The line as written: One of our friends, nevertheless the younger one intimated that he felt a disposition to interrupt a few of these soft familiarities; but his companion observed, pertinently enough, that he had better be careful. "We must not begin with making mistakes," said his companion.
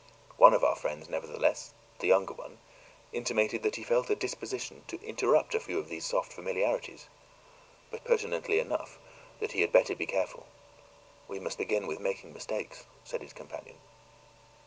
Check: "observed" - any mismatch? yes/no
yes